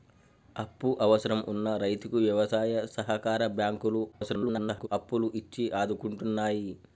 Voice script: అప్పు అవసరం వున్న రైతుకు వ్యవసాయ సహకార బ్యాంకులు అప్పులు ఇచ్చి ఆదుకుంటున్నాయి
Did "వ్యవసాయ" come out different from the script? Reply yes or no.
no